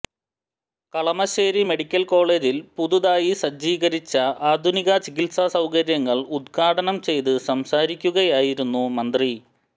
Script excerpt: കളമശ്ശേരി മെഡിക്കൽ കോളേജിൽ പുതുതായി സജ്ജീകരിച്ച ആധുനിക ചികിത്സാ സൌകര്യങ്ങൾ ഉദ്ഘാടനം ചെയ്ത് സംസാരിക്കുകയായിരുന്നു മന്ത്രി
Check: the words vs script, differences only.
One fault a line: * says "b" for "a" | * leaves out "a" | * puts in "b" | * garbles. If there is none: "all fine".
all fine